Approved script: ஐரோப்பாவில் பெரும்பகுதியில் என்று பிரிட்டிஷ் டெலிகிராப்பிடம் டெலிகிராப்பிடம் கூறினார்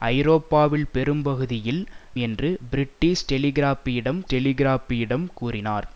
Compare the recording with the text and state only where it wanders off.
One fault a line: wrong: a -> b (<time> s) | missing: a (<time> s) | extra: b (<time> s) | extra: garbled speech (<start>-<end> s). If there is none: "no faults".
no faults